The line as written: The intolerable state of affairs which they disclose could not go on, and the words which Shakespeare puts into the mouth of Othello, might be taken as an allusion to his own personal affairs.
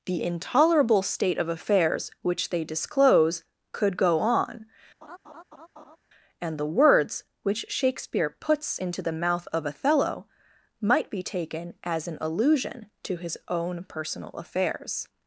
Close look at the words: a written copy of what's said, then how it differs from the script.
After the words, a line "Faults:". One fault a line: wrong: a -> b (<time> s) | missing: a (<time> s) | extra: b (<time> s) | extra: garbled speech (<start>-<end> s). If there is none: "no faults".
The intolerable state of affairs which they disclose could go on, and the words which Shakespeare puts into the mouth of Othello, might be taken as an allusion to his own personal affairs.
Faults:
missing: not (4.0 s)